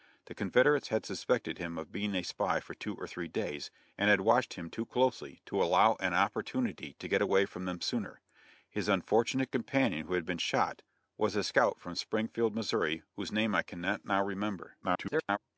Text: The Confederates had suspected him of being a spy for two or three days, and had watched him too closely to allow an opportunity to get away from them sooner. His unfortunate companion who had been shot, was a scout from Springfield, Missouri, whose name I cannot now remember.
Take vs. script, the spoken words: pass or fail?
fail